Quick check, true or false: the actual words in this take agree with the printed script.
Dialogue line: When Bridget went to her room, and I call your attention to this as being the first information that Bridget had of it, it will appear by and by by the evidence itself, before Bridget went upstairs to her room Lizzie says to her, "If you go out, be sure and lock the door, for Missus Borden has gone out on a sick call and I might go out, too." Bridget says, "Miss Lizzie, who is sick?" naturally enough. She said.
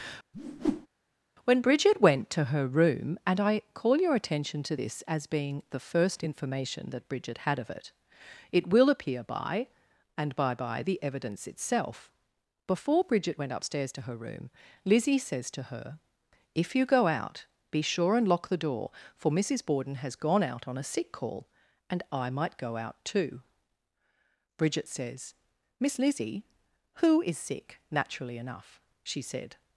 true